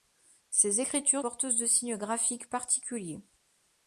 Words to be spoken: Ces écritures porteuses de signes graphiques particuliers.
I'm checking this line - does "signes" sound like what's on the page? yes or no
yes